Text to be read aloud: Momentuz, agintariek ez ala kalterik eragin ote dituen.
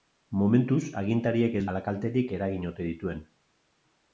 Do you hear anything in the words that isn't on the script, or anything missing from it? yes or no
no